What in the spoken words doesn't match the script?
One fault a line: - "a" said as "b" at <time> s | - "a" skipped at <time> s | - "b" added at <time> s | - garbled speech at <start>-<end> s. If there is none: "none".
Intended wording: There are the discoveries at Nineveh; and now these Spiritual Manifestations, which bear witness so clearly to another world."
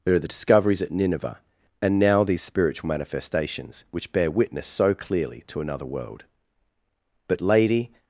- "But Lady" added at 7.3 s